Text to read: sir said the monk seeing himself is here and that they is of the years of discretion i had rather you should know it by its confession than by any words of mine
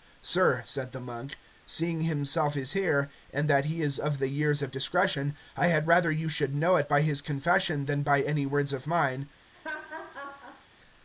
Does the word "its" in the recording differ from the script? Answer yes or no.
yes